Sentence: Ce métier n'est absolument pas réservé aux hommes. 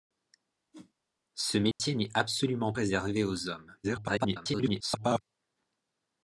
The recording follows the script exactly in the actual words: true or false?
false